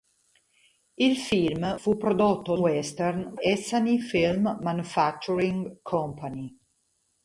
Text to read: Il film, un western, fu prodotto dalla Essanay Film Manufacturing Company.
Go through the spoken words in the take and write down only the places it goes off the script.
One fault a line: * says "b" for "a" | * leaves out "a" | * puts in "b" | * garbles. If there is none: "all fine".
* leaves out "un western"
* says "western" for "dalla"